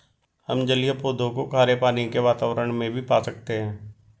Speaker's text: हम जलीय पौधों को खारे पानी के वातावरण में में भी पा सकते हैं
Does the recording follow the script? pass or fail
fail